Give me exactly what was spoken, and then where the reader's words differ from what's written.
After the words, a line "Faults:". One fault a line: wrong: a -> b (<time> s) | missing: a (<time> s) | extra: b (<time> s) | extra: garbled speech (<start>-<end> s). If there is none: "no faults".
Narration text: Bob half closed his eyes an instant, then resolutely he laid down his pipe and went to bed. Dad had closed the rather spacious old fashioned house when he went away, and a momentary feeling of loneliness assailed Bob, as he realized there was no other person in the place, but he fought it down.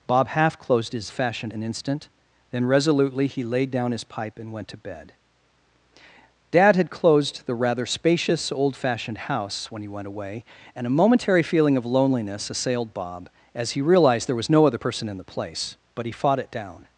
Bob half closed his fashioned an instant, then resolutely he laid down his pipe and went to bed. Dad had closed the rather spacious old fashioned house when he went away, and a momentary feeling of loneliness assailed Bob, as he realized there was no other person in the place, but he fought it down.
Faults:
wrong: eyes -> fashioned (1.1 s)